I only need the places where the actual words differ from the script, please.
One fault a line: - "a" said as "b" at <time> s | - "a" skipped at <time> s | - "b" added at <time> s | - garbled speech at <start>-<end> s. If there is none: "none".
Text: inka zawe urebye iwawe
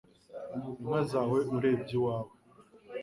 none